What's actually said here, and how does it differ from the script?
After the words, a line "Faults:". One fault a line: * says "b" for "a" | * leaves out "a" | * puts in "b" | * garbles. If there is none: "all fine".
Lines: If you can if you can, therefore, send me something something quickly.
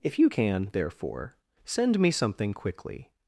If you can, therefore, send me something quickly.
Faults:
* leaves out "if you can"
* leaves out "something"